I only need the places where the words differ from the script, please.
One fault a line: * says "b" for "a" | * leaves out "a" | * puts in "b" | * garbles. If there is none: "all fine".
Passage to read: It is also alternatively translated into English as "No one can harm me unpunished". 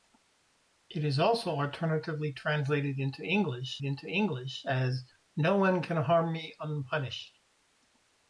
* puts in "into English"